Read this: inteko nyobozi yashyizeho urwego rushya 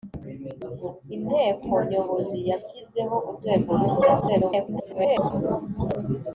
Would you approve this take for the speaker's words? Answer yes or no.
no